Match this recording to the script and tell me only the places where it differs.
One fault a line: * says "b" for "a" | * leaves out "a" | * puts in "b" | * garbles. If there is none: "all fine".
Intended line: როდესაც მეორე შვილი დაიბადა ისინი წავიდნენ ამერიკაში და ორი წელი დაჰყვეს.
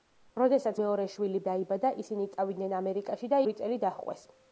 all fine